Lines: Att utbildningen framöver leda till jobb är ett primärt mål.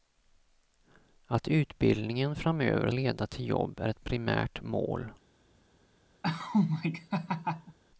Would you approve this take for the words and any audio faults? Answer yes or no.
no